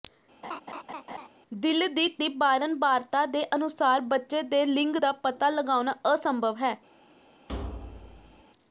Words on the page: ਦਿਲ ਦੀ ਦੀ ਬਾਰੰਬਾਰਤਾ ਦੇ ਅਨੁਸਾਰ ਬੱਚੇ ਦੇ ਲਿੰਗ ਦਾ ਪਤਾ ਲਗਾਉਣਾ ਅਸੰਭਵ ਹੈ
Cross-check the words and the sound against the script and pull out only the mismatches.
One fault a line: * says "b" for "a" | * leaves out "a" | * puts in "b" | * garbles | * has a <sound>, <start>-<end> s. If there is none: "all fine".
* has a laugh, 0.4-1.3 s
* has a thud, 7.5-8.4 s